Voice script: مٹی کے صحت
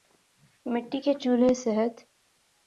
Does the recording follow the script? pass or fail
fail